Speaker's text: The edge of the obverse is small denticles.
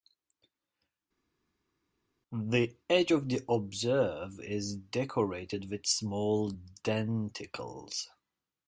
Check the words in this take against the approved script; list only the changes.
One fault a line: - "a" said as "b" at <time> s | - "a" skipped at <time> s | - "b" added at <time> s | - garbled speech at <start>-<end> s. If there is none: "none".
- "decorated with" added at 4.8 s